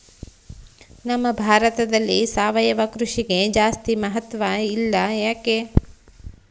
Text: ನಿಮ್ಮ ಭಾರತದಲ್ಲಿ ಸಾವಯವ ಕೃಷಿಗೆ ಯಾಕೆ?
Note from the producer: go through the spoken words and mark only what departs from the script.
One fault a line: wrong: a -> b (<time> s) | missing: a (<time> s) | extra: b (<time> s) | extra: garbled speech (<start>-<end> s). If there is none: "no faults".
wrong: ನಿಮ್ಮ -> ನಮ್ಮ (1.1 s)
extra: ಜಾಸ್ತಿ ಮಹತ್ವ ಇಲ್ಲ (3.5 s)